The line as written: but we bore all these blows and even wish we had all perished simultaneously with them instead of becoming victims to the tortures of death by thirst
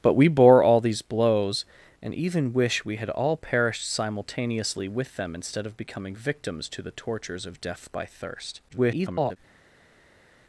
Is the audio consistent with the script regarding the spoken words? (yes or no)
no